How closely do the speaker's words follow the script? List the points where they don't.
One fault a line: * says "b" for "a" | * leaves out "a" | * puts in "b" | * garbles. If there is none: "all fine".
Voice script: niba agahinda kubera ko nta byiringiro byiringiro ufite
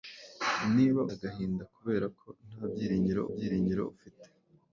all fine